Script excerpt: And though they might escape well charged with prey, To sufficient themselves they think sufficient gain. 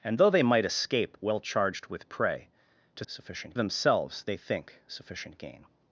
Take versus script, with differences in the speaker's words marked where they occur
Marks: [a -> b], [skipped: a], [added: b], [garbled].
And though they might escape well charged with prey, To sufficient themselves they think sufficient gain.